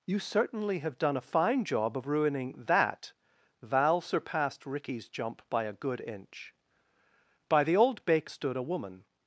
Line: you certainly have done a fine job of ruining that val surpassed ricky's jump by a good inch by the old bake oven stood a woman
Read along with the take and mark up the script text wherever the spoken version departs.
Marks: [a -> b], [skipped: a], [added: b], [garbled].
you certainly have done a fine job of ruining that val surpassed ricky's jump by a good inch by the old bake [skipped: oven] stood a woman